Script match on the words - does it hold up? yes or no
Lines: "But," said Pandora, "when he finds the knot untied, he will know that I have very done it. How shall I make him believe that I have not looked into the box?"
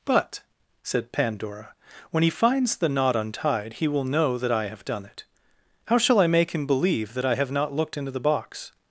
no